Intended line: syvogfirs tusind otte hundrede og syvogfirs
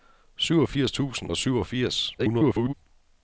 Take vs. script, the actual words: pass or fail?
fail